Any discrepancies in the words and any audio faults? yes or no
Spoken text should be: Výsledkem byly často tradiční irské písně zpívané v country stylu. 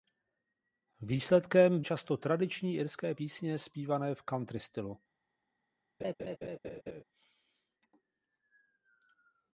yes